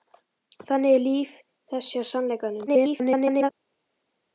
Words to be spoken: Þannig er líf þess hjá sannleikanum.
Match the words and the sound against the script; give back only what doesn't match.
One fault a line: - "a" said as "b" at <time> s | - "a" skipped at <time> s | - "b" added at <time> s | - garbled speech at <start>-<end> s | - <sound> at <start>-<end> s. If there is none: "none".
- garbled speech at 2.7-3.5 s